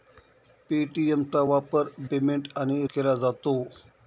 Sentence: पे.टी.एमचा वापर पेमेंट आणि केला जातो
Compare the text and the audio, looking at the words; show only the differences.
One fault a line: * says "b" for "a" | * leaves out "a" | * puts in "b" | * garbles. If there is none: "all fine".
all fine